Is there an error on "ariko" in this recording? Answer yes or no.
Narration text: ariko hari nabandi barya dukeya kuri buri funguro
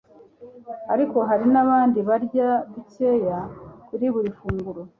no